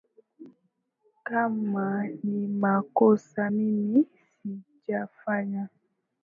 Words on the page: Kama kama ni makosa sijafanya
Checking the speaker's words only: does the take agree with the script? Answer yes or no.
no